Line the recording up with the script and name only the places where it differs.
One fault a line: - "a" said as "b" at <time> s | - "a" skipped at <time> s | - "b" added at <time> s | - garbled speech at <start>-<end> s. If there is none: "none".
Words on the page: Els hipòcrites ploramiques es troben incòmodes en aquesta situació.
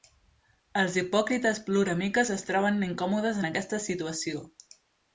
none